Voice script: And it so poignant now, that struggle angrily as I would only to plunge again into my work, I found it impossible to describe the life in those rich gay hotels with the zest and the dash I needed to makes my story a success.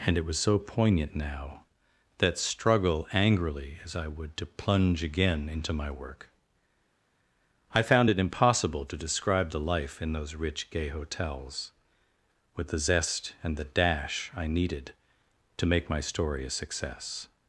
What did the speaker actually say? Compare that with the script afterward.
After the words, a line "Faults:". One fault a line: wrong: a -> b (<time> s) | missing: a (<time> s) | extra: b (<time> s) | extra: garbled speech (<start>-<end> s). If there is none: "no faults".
And it was so poignant now, that struggle angrily as I would to plunge again into my work, I found it impossible to describe the life in those rich gay hotels with the zest and the dash I needed to make my story a success.
Faults:
extra: was (0.2 s)
missing: only (4.3 s)
wrong: makes -> make (15.7 s)